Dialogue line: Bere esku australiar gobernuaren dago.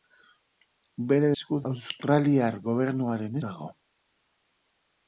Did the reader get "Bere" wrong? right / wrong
right